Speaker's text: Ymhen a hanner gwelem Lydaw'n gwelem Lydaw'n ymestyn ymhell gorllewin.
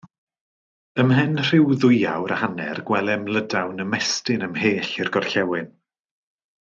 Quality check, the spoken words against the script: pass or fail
fail